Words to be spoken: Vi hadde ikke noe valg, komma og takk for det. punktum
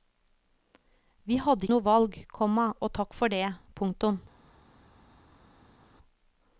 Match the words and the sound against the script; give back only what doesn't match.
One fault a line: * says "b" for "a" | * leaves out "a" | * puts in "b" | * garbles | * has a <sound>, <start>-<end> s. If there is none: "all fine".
* leaves out "ikke"